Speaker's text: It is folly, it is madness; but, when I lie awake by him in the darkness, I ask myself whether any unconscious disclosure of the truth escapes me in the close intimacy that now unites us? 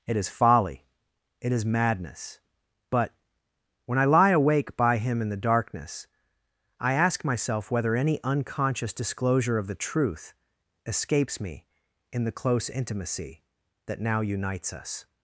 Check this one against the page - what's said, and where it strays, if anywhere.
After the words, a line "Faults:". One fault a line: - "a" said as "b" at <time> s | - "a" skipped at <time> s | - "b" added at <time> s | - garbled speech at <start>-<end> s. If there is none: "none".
It is folly, it is madness; but, when I lie awake by him in the darkness, I ask myself whether any unconscious disclosure of the truth escapes me in the close intimacy that now unites us?
Faults:
none